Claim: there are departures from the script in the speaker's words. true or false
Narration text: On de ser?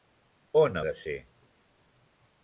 false